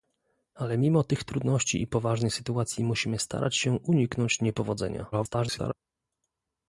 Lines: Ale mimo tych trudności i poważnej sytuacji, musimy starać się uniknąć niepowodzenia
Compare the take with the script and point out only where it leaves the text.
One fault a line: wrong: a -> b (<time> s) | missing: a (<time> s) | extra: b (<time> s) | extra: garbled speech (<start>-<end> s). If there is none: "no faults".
extra: garbled speech (5.1-5.7 s)